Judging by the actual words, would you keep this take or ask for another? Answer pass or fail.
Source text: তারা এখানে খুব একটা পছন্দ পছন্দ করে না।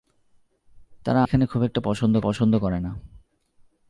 pass